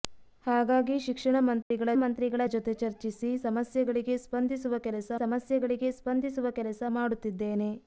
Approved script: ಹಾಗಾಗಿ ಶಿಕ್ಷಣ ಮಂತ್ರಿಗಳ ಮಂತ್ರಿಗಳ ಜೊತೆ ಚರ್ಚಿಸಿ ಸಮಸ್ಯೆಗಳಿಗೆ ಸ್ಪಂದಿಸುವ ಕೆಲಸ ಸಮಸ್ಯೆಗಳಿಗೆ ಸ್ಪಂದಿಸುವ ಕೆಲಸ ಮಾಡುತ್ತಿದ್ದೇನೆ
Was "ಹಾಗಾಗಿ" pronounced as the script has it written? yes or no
yes